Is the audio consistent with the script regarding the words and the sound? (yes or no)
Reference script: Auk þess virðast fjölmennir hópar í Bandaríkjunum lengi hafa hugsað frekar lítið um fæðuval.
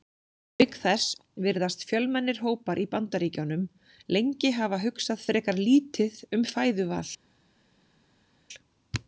yes